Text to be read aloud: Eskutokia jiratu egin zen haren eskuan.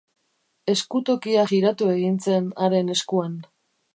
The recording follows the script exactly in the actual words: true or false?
true